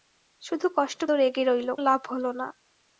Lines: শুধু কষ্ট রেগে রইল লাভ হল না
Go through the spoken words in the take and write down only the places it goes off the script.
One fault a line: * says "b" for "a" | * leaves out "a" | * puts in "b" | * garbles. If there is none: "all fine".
all fine